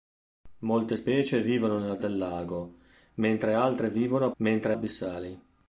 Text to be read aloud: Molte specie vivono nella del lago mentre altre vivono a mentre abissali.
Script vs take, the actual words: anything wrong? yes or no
no